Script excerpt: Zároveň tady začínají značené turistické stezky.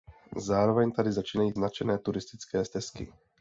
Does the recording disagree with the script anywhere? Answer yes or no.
no